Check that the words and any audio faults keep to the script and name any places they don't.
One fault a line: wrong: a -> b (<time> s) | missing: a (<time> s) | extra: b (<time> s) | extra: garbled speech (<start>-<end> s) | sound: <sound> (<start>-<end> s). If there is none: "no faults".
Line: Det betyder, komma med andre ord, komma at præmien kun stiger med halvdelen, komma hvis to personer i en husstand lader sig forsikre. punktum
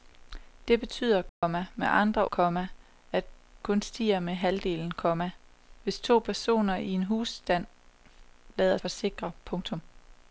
sound: dropout (1.3-1.4 s)
missing: ord (2.3 s)
missing: præmien (3.2 s)
missing: sig (8.8 s)